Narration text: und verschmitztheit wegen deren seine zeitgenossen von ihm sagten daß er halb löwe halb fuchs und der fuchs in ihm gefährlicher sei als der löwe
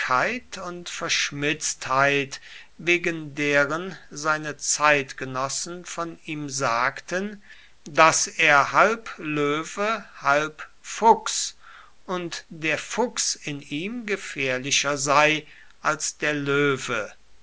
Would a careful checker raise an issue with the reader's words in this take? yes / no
no